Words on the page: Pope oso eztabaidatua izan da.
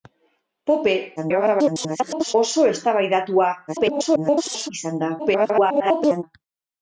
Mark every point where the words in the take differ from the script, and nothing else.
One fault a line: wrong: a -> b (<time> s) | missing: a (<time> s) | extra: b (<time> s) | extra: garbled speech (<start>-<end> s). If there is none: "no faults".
extra: garbled speech (1.2-2.3 s)
extra: garbled speech (3.7-4.7 s)
extra: garbled speech (5.2-6.2 s)